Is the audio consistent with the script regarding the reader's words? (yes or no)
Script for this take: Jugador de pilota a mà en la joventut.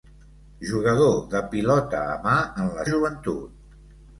yes